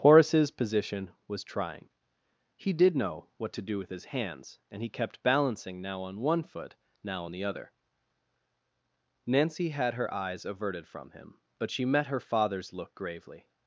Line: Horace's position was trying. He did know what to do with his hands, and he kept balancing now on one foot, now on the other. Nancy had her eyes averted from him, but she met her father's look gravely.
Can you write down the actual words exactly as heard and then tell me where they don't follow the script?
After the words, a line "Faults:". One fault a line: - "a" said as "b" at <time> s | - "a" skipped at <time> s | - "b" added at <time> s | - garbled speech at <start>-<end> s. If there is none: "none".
Horace's position was trying. He did know what to do with his hands, and he kept balancing now on one foot, now on the other. Nancy had her eyes averted from him, but she met her father's look gravely.
Faults:
none